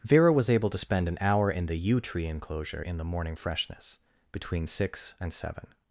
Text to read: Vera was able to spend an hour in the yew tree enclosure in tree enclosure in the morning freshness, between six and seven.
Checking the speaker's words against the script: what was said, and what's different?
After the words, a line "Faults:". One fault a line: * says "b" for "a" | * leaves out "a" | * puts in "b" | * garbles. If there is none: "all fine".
Vera was able to spend an hour in the yew tree enclosure in the morning freshness, between six and seven.
Faults:
* leaves out "tree enclosure in"